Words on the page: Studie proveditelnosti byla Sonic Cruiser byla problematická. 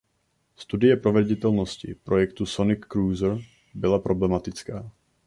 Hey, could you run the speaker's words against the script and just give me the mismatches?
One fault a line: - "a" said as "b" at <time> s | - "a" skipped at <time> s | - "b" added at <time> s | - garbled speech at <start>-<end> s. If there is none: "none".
- "byla" said as "projektu" at 2.0 s